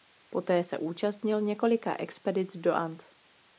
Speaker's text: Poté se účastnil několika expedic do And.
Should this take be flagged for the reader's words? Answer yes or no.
no